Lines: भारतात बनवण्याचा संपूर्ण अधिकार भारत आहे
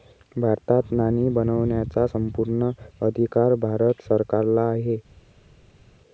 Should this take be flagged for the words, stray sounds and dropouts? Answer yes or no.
yes